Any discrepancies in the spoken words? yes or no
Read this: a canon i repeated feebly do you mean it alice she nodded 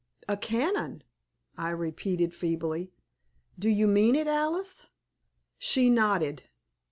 no